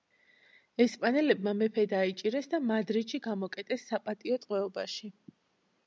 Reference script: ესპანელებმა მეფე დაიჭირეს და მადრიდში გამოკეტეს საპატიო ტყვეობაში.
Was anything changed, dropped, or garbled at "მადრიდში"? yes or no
no